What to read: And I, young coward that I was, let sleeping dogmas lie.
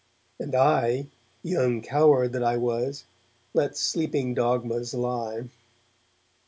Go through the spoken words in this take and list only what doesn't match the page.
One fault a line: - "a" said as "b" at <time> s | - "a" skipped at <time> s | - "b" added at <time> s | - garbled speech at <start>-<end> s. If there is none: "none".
none